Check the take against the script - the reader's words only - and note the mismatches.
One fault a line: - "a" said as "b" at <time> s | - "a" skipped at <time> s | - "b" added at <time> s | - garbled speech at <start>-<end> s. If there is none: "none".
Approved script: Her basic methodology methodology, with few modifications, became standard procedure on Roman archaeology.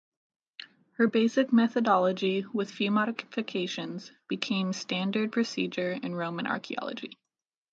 - "methodology" skipped at 2.5 s
- "on" said as "in" at 5.9 s